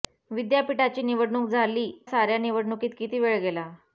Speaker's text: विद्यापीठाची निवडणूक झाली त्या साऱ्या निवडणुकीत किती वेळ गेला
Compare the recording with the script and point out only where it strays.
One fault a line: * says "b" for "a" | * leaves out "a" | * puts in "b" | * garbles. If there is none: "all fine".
* leaves out "त्या"